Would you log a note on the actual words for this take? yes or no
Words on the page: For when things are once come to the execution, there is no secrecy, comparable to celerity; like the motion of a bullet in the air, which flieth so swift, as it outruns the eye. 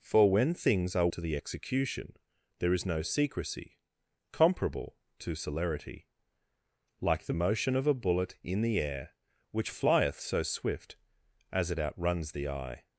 yes